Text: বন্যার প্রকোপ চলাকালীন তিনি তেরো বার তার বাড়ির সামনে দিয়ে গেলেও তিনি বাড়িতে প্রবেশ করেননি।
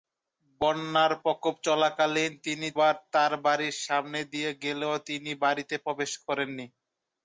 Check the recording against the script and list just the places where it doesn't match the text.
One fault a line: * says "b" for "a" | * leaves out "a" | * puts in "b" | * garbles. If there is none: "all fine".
* leaves out "তেরো"